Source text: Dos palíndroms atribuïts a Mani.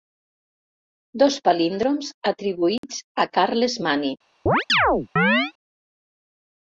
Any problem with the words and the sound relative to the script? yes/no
yes